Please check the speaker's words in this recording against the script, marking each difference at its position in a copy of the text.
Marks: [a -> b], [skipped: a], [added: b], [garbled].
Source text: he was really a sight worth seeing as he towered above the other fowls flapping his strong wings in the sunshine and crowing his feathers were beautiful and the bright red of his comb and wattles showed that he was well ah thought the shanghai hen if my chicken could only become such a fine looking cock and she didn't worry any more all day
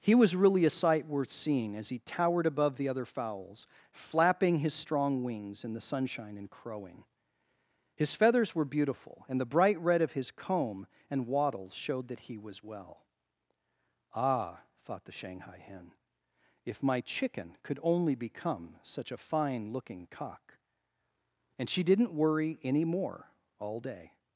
he was really a sight worth seeing as he towered above the other fowls flapping his strong wings in the sunshine and crowing his feathers were beautiful and the bright red of his comb and wattles showed that he was well ah thought the shanghai hen if my chicken could only become such a fine looking cock and she didn't worry any more all day